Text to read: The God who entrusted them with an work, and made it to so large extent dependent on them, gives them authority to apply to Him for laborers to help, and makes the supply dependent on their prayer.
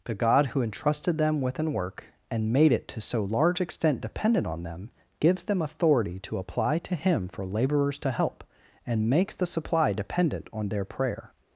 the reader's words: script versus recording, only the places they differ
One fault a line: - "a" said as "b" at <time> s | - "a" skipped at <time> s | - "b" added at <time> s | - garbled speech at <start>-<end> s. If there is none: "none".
none